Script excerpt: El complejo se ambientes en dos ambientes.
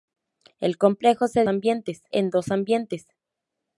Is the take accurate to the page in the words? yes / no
yes